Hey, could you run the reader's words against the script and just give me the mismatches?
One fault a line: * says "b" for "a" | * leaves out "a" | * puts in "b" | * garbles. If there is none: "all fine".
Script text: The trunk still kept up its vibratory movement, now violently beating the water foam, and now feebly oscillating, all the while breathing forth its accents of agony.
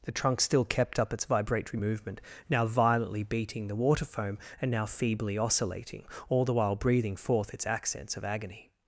all fine